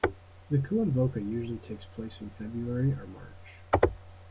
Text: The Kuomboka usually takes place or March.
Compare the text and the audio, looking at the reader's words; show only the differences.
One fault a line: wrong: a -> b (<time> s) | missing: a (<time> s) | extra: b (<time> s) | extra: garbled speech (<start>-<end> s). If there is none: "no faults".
extra: in February (2.2 s)